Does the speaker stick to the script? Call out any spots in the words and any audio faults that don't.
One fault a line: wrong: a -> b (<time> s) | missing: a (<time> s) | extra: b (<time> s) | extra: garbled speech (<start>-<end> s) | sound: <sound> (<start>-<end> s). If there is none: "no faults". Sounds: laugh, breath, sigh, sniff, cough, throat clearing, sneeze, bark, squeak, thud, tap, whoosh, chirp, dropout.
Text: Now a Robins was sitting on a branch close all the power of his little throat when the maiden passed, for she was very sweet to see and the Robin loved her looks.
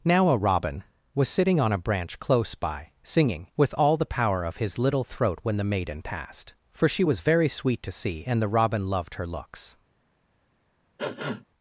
wrong: Robins -> Robin (0.4 s)
extra: by singing with (2.5 s)
sound: sniff (11.0-11.4 s)